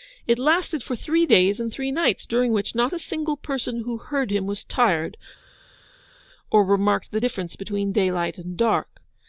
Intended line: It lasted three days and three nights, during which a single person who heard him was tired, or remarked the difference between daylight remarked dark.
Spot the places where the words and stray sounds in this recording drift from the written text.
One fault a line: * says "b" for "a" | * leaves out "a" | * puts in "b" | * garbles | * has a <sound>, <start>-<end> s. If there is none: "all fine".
* puts in "for"
* puts in "not"
* says "and" for "remarked"